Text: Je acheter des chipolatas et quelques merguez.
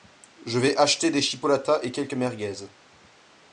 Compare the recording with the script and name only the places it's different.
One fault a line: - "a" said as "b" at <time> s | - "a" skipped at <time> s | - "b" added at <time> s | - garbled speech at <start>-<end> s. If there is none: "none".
- "vais" added at 0.6 s